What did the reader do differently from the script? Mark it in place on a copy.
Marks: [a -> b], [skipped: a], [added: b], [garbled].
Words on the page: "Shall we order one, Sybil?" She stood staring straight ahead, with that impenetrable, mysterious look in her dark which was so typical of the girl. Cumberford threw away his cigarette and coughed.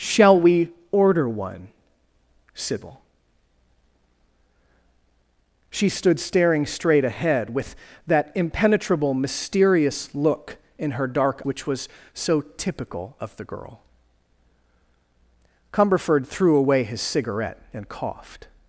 "Shall we order one, Sybil?" She stood staring straight ahead, with that impenetrable, mysterious look in her dark which was so typical of the girl. Cumberford threw away his cigarette and coughed.